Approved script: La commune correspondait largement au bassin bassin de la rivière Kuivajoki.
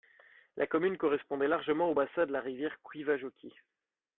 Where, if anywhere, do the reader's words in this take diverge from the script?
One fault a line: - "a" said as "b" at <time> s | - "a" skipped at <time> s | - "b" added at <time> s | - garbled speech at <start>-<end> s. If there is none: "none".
- "bassin" skipped at 2.3 s